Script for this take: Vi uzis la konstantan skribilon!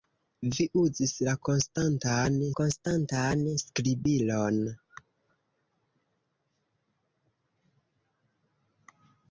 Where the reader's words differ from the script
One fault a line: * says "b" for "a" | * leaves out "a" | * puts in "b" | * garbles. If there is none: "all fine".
* puts in "konstantan"